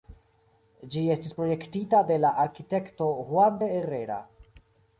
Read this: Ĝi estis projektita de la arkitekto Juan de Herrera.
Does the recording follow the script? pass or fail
pass